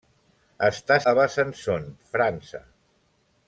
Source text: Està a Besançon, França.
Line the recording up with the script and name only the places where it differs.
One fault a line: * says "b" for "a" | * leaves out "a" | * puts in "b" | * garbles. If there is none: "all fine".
all fine